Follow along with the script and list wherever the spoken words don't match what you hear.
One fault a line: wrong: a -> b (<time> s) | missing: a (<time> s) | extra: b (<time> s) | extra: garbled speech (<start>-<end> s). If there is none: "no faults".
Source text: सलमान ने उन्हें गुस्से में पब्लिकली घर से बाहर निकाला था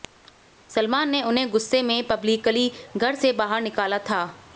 no faults